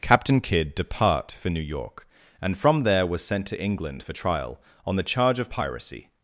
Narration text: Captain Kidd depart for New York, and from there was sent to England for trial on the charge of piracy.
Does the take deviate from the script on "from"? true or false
false